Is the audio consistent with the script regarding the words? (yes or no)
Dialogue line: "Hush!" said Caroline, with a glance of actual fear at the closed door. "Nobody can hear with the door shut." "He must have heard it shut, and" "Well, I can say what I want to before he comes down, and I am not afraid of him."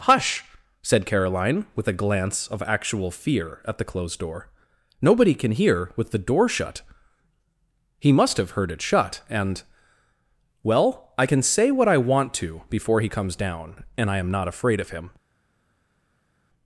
yes